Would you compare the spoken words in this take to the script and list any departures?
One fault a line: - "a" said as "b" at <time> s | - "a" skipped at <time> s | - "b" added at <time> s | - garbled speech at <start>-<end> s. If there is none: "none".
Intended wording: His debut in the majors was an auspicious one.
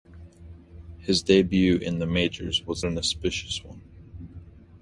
none